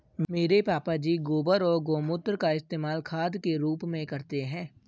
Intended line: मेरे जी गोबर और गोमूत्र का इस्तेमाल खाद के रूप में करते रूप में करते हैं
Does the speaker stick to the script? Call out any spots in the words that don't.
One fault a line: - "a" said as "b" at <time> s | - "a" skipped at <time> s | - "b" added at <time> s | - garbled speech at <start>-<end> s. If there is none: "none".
- "पापा" added at 0.6 s
- "रूप में करते" skipped at 4.4 s